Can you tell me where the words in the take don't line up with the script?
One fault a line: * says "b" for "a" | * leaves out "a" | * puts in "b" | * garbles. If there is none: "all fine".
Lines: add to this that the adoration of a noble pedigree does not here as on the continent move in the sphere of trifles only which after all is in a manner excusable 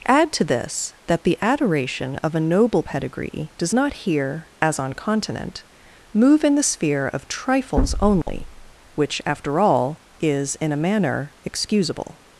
* leaves out "the"